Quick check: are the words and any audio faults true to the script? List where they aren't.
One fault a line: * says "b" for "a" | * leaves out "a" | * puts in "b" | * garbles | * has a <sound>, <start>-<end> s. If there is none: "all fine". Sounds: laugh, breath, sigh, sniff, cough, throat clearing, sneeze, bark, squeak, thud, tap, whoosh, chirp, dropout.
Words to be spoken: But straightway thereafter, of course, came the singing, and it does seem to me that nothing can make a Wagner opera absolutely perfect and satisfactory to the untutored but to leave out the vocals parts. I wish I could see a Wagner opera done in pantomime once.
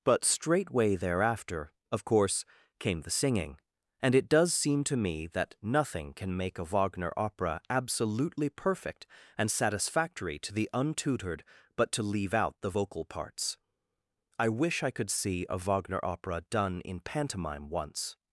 * says "vocal" for "vocals"